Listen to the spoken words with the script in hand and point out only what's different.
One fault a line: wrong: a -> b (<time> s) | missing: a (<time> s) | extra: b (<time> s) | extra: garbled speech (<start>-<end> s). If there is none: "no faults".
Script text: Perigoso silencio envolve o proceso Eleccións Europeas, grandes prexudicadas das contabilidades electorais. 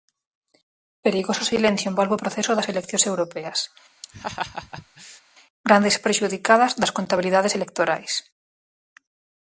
extra: das (2.5 s)